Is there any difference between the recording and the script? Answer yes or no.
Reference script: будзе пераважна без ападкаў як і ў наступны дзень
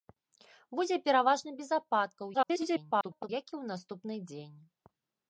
yes